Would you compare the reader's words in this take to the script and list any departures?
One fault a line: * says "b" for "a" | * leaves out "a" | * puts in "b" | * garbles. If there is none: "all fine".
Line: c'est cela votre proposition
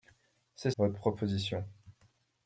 * leaves out "cela"